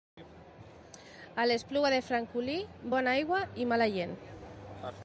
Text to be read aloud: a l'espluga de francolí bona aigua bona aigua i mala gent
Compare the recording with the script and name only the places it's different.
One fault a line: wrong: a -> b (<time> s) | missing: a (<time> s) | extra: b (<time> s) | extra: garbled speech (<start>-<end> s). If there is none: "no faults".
missing: bona aigua (3.4 s)